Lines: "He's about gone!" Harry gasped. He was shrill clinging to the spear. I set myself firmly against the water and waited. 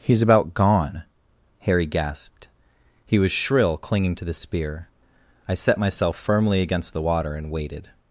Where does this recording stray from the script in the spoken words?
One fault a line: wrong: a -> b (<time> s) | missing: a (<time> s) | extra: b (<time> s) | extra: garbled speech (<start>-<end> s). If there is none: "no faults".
no faults